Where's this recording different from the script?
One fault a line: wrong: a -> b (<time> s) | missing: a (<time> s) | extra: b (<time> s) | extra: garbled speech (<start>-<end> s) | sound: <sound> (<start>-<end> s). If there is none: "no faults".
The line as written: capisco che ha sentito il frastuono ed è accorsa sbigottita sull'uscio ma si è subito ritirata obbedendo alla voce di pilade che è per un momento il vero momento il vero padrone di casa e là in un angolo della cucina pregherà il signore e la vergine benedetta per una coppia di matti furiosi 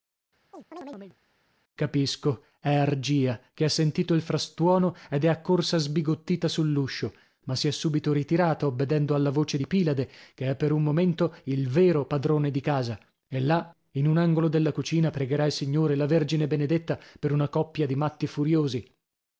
sound: chirp (0.5-1.2 s)
extra: è argia (2.6 s)
missing: momento il vero (12.0 s)